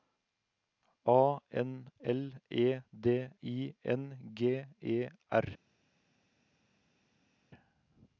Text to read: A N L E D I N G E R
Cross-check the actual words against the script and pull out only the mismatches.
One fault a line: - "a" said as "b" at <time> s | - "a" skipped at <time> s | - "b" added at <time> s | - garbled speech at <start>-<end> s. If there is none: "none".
none